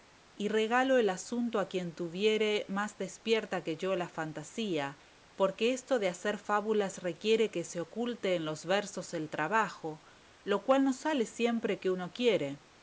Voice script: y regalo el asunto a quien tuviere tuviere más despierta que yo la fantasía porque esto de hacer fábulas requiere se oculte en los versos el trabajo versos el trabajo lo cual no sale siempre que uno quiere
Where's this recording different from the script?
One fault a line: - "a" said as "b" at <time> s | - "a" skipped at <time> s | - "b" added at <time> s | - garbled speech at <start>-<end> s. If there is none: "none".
- "tuviere" skipped at 2.6 s
- "que" added at 7.5 s
- "versos el trabajo" skipped at 10.0 s